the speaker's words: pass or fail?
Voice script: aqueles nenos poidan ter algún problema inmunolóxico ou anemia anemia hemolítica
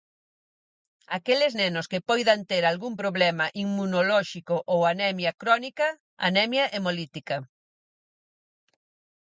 fail